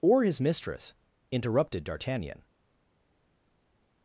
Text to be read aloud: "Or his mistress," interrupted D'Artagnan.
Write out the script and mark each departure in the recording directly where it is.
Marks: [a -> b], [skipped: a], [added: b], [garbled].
"Or his mistress," interrupted D'Artagnan.